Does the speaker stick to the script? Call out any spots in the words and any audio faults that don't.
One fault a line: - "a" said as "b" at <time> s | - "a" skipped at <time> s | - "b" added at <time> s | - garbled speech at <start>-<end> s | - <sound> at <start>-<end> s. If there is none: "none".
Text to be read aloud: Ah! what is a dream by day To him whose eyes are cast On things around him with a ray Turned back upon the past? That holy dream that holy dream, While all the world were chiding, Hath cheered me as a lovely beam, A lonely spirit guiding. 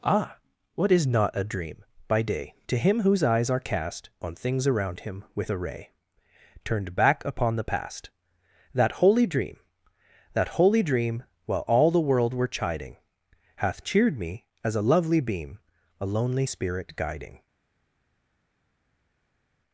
- "not" added at 1.1 s